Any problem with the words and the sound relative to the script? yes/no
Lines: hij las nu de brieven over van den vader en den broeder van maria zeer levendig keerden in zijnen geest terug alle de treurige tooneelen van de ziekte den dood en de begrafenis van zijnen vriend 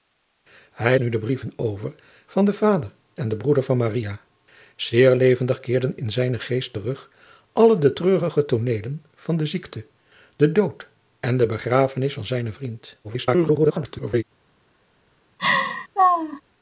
yes